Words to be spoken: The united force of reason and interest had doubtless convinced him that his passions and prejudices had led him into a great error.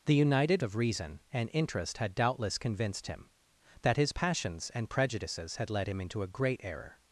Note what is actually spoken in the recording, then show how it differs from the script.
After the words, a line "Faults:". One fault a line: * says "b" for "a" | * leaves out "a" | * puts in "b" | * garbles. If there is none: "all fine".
The united of reason and interest had doubtless convinced him that his passions and prejudices had led him into a great error.
Faults:
* leaves out "force"